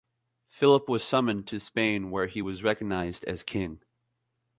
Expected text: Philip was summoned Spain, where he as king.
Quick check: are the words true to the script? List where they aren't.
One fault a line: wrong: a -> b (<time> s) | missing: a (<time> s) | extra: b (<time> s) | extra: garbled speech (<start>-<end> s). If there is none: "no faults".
extra: to (1.5 s)
extra: was recognized (2.4 s)